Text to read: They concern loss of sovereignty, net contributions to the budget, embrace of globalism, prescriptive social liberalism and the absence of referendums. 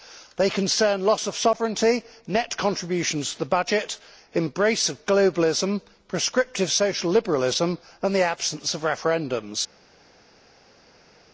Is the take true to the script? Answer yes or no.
yes